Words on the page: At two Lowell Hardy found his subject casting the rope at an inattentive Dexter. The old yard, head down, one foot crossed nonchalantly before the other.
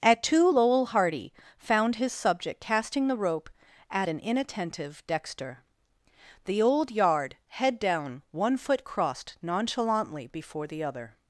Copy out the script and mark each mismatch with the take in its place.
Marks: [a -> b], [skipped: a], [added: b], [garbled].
At two Lowell Hardy found his subject casting the rope at an inattentive Dexter. The old yard, head down, one foot crossed nonchalantly before the other.